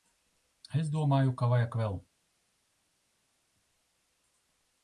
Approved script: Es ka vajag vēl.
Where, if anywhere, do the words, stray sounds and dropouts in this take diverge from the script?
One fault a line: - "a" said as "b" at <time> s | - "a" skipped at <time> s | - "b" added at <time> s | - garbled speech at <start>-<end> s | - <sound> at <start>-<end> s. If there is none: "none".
- "domāju" added at 0.9 s